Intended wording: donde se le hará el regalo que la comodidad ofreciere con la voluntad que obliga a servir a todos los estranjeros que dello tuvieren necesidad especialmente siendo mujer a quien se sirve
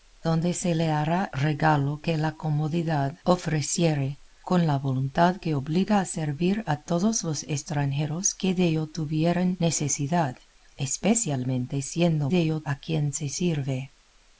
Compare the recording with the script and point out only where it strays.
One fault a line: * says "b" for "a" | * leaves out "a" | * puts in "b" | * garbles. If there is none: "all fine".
* leaves out "el"
* says "dello" for "mujer"